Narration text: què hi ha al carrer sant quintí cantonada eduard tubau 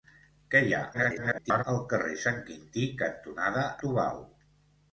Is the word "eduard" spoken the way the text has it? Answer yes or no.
no